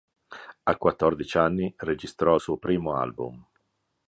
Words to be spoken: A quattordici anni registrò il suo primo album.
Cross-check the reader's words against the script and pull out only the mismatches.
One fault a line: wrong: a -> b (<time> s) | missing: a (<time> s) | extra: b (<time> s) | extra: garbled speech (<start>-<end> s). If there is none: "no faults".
no faults